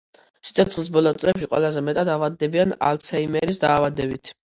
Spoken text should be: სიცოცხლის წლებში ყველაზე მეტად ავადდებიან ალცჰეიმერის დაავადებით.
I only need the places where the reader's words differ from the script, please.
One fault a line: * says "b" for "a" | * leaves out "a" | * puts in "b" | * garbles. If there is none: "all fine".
* puts in "ბოლო"